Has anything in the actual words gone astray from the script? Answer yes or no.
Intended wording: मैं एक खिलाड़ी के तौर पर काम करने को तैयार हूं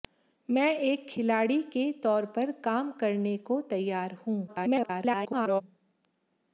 yes